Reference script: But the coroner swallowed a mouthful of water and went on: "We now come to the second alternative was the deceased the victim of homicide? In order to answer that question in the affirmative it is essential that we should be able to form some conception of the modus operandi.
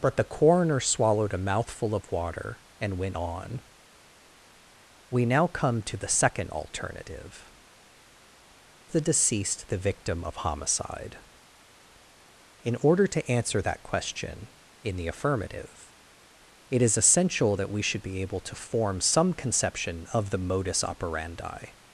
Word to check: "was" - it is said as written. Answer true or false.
false